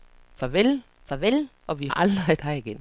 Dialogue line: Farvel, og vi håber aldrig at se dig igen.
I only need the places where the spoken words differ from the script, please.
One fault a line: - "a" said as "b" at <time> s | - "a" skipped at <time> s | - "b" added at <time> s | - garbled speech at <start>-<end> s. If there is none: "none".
- "farvel" added at 1.0 s
- "håber" skipped at 1.9 s
- "se" skipped at 2.4 s